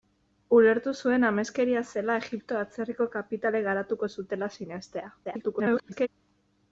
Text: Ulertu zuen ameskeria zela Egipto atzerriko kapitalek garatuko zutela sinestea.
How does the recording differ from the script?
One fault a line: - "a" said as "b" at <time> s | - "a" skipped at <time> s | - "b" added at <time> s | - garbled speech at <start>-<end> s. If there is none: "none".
- garbled speech at 5.2-6.1 s